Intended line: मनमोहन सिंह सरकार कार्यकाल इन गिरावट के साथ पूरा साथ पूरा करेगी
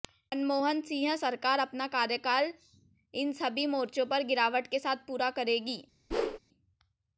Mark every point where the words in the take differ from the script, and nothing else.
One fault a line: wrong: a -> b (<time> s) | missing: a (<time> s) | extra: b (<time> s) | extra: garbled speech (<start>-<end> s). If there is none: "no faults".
extra: अपना (1.6 s)
extra: सभी मोर्चों पर (3.3 s)
missing: साथ पूरा (5.3 s)